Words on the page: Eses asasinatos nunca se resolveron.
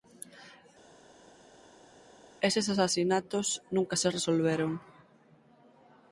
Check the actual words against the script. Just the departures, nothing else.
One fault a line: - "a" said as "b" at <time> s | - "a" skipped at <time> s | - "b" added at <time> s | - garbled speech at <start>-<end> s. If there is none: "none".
none